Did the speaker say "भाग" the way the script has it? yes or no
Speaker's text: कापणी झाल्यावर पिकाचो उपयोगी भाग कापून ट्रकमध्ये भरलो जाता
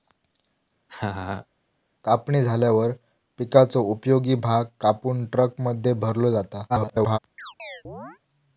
yes